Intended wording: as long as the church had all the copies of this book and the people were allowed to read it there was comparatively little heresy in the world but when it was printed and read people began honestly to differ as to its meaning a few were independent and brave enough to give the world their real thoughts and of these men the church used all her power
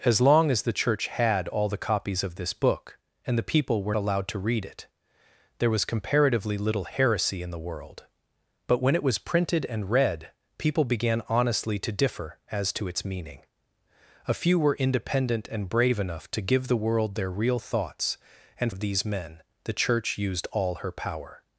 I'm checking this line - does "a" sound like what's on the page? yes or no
yes